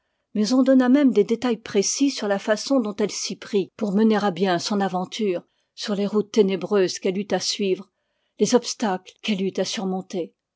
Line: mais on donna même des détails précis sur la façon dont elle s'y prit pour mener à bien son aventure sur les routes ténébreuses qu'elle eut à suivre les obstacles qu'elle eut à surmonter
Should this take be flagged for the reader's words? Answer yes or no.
no